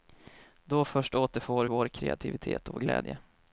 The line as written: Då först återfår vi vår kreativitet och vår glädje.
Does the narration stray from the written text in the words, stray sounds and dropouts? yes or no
yes